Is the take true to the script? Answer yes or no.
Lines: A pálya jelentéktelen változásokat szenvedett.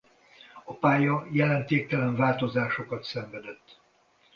yes